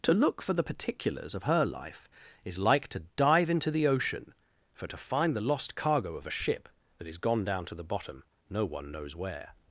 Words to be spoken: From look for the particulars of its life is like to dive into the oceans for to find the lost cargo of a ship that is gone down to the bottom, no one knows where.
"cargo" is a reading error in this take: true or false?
false